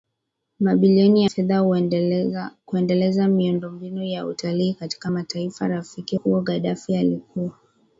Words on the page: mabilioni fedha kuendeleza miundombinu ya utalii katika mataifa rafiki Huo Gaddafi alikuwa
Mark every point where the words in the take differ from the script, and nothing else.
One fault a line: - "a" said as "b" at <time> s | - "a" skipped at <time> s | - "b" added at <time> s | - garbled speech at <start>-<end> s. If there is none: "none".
none